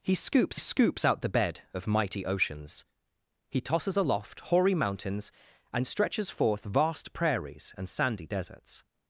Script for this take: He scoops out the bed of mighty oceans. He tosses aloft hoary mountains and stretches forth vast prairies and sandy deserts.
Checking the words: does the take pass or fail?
fail